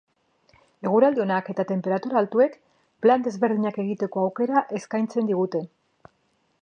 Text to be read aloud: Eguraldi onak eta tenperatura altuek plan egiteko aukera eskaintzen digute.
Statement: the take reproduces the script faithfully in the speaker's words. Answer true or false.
false